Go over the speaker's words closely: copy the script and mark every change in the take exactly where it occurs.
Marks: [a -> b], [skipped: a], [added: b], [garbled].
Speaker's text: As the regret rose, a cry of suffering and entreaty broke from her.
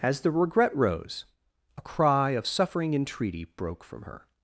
As the regret rose, a cry of suffering [skipped: and] entreaty broke from her.